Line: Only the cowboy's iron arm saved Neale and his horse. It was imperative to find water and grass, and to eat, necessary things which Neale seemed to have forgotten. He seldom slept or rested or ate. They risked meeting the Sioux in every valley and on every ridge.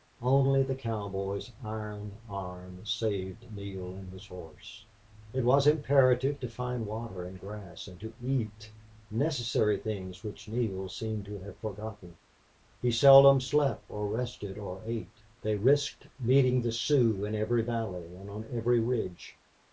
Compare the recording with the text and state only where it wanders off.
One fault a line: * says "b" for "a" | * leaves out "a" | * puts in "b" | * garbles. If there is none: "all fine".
all fine